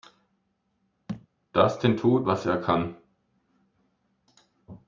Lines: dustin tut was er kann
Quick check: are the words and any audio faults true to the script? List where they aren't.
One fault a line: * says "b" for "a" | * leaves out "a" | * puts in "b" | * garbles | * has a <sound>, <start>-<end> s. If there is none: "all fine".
* has a thud, 1.1-1.3 s